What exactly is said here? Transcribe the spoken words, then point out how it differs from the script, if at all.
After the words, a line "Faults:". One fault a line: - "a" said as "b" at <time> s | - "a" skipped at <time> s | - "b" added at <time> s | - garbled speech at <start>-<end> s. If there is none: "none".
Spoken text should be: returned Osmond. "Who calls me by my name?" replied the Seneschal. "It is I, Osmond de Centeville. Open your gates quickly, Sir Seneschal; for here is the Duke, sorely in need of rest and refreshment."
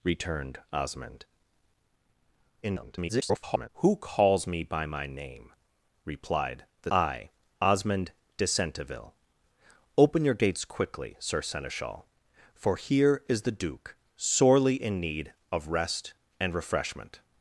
returned Osmond. [garbled] "Who calls me by my name?" replied the I, Osmond de Centeville. Open your gates quickly, Sir Seneschal; for here is the Duke, sorely in need of rest and refreshment."
Faults:
- garbled speech at 2.6-3.7 s
- "Seneschal It is" skipped at 6.9 s